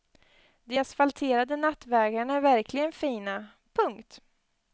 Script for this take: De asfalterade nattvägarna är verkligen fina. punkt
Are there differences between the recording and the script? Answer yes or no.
no